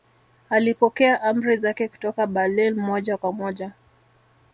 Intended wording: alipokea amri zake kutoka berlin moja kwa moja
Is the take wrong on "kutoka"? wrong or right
right